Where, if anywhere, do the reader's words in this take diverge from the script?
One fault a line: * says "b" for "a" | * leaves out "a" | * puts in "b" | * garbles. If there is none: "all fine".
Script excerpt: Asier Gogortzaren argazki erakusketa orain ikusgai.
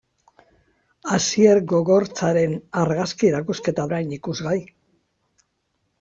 all fine